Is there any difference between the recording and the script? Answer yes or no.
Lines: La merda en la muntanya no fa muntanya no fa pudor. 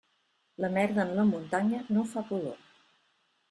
yes